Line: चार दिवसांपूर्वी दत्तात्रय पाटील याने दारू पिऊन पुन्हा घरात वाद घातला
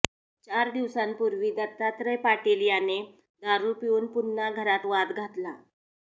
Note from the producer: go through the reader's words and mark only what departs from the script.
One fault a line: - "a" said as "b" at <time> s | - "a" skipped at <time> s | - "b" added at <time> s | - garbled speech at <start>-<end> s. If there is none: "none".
none